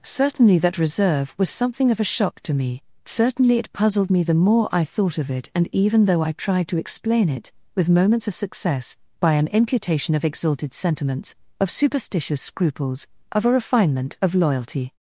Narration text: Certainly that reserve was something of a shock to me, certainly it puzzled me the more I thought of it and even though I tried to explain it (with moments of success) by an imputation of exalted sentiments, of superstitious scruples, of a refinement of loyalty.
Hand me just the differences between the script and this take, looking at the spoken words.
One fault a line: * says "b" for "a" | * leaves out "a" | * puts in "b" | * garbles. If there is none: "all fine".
all fine